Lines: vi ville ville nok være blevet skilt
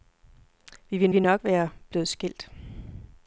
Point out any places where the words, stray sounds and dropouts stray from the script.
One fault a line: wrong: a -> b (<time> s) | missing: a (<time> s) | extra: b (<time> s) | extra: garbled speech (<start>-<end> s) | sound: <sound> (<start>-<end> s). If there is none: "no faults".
no faults